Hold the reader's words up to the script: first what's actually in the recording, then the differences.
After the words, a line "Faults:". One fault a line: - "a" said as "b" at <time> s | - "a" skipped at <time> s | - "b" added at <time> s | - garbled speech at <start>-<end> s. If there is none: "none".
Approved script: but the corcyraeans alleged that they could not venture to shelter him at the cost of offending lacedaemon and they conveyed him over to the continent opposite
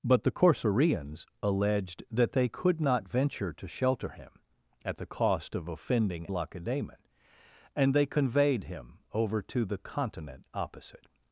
but the corcyraeans alleged that they could not venture to shelter him at the cost of offending lacedaemon and they conveyed him over to the continent opposite
Faults:
none